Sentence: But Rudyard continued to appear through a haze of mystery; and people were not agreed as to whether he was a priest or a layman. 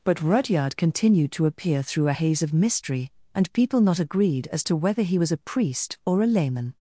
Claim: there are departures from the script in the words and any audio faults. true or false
true